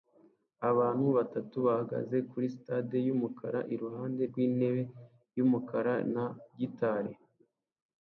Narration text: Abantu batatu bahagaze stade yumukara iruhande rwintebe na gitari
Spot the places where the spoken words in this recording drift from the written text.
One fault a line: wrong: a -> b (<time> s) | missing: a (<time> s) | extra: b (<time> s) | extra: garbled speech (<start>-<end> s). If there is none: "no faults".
extra: kuri (2.3 s)
extra: yumukara (5.4 s)